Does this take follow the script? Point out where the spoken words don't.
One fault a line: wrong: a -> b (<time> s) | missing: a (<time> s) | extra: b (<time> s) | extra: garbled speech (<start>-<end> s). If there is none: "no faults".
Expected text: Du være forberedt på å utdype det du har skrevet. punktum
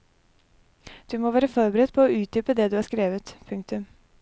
extra: må (1.2 s)